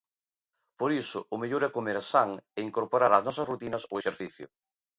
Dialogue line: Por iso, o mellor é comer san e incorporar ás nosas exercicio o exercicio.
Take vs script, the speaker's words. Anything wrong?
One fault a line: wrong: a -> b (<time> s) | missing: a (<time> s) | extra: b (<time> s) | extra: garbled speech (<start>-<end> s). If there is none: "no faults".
wrong: exercicio -> rutinas (3.5 s)